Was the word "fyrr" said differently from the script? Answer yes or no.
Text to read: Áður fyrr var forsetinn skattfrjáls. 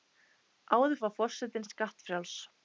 yes